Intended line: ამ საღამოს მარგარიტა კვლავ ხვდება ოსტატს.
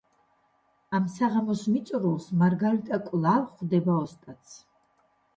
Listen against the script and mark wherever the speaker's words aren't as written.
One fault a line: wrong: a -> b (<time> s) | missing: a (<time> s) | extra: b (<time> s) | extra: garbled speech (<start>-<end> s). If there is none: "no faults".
extra: მიწურულს (1.7 s)